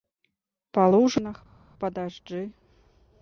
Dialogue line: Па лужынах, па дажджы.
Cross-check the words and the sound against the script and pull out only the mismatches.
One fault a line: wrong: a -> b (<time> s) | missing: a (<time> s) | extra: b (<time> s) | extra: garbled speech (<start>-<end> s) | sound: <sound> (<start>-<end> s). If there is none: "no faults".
no faults